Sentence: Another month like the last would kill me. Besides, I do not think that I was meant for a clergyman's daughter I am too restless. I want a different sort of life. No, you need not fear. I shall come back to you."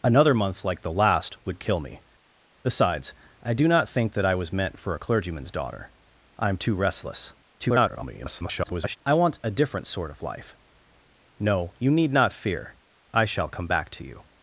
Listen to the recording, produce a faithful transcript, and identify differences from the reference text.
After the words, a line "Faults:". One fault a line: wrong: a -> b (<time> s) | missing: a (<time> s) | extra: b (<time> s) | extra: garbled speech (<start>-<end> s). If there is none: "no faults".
Another month like the last would kill me. Besides, I do not think that I was meant for a clergyman's daughter I am too restless. [garbled] I want a different sort of life. No, you need not fear. I shall come back to you."
Faults:
extra: garbled speech (7.6-9.0 s)